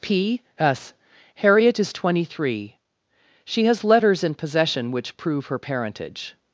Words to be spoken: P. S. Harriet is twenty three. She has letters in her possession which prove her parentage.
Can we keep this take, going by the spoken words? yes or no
no